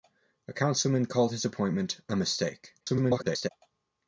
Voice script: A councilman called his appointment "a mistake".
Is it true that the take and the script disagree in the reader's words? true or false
true